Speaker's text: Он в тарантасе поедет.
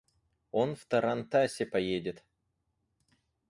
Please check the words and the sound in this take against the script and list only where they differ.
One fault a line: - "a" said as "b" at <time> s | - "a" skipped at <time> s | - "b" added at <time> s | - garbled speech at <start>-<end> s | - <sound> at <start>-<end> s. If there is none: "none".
none